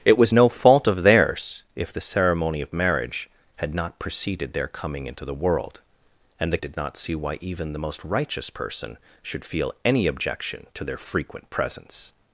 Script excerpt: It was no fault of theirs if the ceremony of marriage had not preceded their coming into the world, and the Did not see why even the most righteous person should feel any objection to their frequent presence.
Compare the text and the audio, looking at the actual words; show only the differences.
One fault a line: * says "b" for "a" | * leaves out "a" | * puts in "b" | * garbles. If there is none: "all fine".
all fine